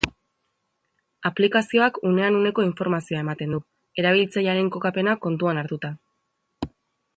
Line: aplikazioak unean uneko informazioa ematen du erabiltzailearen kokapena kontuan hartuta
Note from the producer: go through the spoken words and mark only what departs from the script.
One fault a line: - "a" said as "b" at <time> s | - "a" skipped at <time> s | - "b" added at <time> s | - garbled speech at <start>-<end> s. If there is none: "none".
none